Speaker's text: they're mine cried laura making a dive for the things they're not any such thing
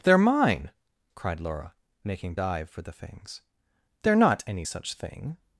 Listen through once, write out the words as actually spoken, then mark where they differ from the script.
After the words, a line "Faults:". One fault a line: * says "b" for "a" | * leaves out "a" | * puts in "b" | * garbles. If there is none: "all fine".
they're mine cried laura making dive for the things they're not any such thing
Faults:
* leaves out "a"